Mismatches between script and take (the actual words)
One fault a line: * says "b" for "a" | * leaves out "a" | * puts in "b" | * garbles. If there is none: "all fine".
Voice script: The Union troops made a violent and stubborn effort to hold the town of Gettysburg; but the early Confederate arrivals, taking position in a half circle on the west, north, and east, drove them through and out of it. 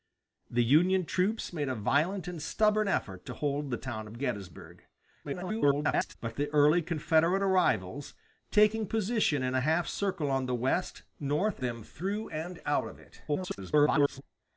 * garbles
* leaves out "and east drove"
* garbles